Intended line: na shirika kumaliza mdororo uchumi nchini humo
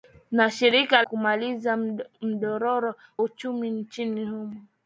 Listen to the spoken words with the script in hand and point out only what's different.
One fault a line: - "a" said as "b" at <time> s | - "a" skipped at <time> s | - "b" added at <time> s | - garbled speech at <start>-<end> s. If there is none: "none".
none